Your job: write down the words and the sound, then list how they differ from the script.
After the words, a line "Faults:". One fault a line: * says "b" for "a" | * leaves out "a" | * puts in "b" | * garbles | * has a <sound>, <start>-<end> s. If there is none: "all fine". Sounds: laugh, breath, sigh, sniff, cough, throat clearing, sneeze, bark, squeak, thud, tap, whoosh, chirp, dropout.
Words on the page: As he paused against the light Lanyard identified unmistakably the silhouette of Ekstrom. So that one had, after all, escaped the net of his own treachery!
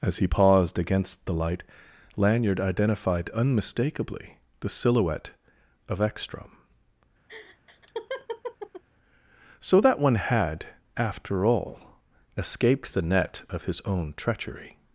As he paused against the light Lanyard identified unmistakably the silhouette of Ekstrom. So that one had, after all, escaped the net of his own treachery!
Faults:
* has a laugh, 7.3-8.8 s